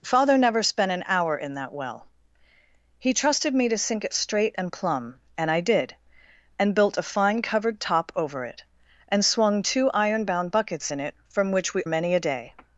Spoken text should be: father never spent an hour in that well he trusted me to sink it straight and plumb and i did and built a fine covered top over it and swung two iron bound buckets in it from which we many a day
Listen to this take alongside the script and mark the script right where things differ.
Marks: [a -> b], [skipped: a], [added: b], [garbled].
father never spent an hour in that well he trusted me to sink it straight and plumb and i did and built a fine covered top over it and swung two iron bound buckets in it from which we many a day